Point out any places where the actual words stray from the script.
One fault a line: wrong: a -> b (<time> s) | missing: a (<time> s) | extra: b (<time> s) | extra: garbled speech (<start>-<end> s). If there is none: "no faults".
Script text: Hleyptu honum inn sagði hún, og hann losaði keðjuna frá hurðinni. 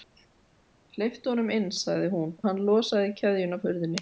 missing: og (2.3 s)
missing: frá (3.6 s)